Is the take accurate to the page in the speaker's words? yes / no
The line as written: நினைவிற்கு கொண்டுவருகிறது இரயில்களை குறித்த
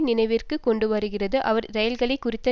no